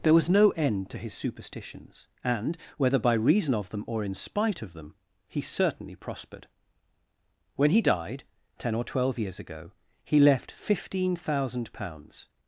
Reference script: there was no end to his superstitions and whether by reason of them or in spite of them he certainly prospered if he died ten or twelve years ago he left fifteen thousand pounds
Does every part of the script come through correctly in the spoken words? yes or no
no